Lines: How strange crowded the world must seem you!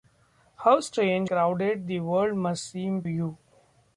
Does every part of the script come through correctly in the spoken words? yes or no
yes